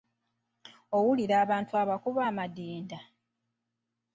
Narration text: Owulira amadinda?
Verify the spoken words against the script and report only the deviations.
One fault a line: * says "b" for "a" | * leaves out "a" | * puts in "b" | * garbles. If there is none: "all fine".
* puts in "abantu abakuba"